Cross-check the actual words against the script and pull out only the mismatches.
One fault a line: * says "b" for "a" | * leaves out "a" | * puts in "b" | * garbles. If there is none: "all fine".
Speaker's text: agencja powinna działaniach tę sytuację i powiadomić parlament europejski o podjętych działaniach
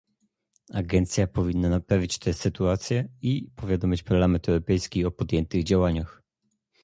* says "naprawić" for "działaniach"